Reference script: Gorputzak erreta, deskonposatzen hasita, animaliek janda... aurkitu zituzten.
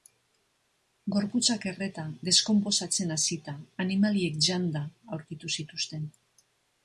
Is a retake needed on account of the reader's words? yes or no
no